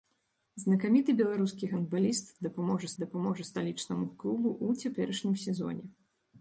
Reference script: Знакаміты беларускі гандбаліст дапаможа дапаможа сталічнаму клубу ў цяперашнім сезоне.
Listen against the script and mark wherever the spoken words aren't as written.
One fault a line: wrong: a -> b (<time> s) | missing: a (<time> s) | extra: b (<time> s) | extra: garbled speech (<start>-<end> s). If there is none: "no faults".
no faults